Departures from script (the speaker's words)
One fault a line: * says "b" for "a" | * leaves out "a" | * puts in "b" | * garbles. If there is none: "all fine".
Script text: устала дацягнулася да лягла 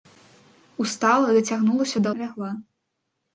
all fine